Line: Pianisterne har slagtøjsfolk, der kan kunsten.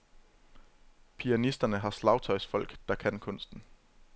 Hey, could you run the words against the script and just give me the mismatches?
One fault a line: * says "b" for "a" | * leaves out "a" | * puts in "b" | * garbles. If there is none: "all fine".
all fine